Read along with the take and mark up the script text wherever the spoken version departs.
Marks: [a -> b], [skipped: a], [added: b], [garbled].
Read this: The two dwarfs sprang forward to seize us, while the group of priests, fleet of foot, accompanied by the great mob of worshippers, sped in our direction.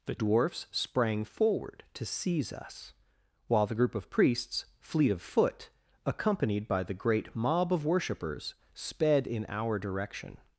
The [skipped: two] dwarfs sprang forward to seize us, while the group of priests, fleet of foot, accompanied by the great mob of worshippers, sped in our direction.